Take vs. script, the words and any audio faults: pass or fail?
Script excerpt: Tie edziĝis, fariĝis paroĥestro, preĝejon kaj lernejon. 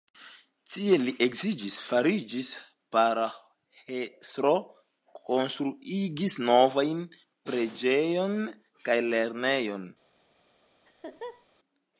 fail